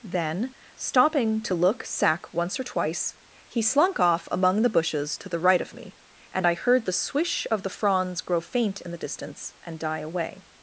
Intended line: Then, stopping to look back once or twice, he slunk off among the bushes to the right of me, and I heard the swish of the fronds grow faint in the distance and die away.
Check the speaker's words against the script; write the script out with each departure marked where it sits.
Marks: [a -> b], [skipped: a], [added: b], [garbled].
Then, stopping to look [back -> sack] once or twice, he slunk off among the bushes to the right of me, and I heard the swish of the fronds grow faint in the distance and die away.